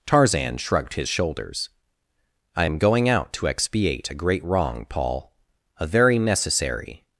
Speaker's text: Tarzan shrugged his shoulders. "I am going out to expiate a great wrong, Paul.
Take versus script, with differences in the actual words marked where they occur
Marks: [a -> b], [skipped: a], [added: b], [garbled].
Tarzan shrugged his shoulders. "I am going out to expiate a great wrong, Paul. [added: A very necessary]